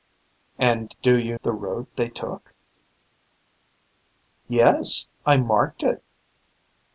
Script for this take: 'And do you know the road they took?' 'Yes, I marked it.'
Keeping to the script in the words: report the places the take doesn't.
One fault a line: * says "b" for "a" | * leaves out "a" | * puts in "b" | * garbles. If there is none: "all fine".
* leaves out "know"